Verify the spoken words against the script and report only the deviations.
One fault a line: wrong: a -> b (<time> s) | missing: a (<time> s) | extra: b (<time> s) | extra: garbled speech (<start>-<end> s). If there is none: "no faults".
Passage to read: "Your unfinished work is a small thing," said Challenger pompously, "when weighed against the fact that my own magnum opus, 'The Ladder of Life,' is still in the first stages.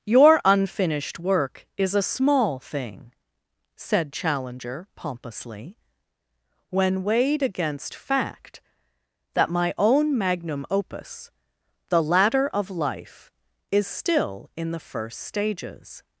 missing: the (8.0 s)